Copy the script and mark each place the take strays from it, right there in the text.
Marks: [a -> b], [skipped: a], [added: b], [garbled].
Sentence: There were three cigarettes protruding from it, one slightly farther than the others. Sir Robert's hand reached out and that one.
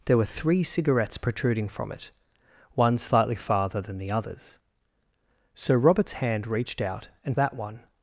There were three cigarettes protruding from it, one slightly farther than the others. Sir Robert's hand reached out and that one.